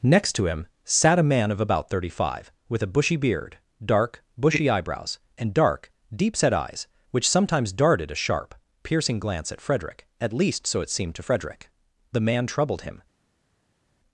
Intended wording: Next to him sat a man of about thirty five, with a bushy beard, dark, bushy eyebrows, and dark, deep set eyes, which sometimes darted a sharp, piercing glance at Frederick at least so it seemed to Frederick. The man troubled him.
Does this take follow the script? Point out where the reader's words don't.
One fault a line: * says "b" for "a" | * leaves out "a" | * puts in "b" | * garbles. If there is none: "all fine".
all fine